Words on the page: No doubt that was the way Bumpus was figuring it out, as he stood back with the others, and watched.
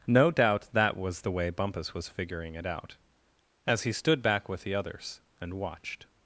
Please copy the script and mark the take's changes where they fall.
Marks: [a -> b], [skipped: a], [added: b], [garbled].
No doubt that was the way Bumpus was figuring it out, as he stood back with the others, and watched.